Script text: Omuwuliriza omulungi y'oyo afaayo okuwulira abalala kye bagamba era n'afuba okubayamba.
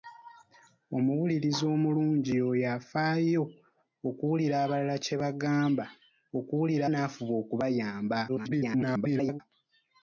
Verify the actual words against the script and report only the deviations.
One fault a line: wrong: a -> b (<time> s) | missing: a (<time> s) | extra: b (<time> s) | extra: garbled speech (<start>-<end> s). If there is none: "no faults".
wrong: era -> okuwulira (6.4 s)
extra: garbled speech (8.3-9.4 s)